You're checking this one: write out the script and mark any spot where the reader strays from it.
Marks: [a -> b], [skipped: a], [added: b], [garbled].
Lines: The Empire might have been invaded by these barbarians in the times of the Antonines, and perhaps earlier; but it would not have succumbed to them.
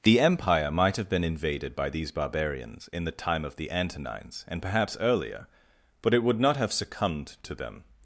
The Empire might have been invaded by these barbarians in the [times -> time] of the Antonines, and perhaps earlier; but it would not have succumbed to them.